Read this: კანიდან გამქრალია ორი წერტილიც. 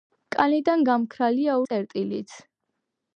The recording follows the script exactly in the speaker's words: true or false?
false